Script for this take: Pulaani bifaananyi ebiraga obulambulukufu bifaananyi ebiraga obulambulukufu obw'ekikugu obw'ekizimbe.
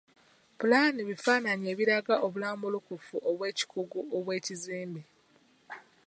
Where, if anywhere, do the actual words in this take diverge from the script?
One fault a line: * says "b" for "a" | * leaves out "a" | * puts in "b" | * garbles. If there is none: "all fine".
* leaves out "bifaananyi ebiraga obulambulukufu"